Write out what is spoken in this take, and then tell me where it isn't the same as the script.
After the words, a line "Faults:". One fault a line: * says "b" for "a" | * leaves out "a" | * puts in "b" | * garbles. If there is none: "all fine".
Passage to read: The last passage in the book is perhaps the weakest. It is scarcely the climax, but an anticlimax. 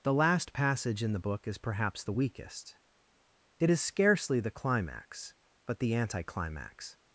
The last passage in the book is perhaps the weakest. It is scarcely the climax, but the anticlimax.
Faults:
* says "the" for "an"